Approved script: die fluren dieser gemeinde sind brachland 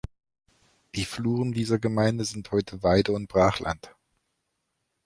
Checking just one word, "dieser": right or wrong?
right